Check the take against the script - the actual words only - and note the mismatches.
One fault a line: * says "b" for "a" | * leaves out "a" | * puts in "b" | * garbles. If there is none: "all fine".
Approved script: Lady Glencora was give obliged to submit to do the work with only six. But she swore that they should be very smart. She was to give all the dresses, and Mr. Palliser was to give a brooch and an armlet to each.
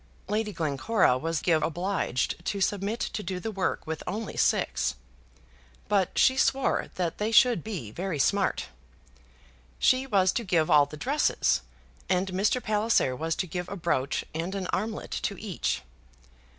all fine